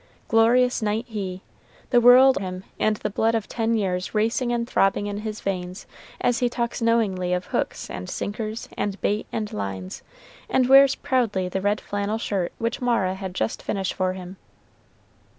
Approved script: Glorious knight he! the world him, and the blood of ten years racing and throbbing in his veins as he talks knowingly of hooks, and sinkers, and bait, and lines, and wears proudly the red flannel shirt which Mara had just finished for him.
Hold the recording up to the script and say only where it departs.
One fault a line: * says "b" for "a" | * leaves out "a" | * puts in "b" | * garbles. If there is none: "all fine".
all fine